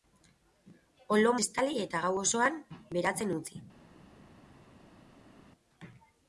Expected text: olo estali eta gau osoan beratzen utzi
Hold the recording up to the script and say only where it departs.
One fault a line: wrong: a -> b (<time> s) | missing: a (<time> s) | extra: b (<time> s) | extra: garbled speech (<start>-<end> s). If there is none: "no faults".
no faults